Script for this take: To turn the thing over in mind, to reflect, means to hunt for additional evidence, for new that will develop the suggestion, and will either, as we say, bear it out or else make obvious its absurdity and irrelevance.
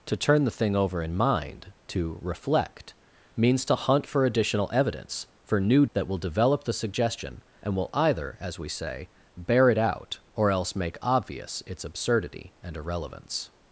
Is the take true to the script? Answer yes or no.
yes